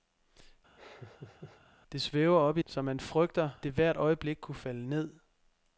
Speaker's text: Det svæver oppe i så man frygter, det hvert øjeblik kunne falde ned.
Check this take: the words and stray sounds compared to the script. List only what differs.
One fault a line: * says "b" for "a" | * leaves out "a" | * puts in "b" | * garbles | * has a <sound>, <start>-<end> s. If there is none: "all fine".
* has a laugh, 0.8-1.6 s